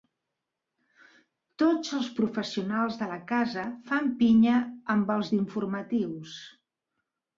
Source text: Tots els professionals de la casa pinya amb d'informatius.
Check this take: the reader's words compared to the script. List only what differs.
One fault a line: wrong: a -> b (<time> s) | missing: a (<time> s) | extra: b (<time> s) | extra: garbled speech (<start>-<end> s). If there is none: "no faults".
extra: fan (3.9 s)
extra: els (5.2 s)